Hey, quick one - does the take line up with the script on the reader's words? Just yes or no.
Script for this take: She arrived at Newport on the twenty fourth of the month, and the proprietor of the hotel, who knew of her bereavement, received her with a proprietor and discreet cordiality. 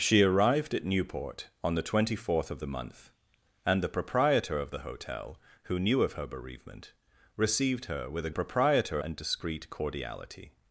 yes